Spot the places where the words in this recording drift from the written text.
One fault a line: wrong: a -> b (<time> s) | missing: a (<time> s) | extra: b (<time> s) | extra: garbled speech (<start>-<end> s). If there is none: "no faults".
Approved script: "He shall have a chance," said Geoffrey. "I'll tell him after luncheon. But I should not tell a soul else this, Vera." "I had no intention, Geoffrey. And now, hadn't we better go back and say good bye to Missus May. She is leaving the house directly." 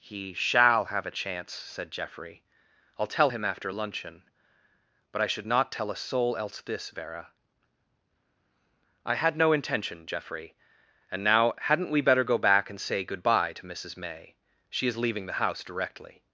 no faults